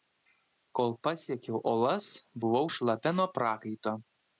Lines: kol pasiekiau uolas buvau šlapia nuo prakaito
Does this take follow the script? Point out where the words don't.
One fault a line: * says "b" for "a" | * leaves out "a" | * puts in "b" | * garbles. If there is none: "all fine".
all fine